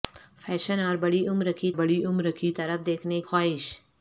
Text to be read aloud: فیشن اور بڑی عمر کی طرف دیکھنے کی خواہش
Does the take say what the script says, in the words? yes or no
no